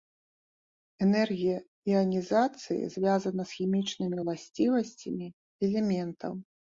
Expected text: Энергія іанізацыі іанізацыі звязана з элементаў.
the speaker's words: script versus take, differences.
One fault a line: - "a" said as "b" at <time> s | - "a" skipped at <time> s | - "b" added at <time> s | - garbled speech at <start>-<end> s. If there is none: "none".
- "іанізацыі" skipped at 2.9 s
- "хімічнымі ўласцівасцямі" added at 3.6 s